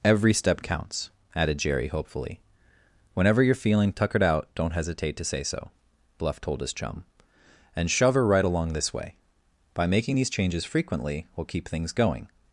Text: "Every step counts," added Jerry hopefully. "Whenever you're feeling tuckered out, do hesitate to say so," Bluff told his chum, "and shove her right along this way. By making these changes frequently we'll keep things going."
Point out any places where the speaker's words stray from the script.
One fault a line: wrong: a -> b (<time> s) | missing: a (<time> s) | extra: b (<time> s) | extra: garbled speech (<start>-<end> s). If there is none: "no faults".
wrong: do -> don't (4.5 s)